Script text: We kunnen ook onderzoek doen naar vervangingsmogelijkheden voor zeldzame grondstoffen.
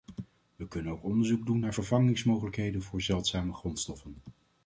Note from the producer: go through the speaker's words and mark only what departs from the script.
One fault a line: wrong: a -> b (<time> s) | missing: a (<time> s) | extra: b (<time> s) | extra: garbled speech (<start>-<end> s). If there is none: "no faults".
no faults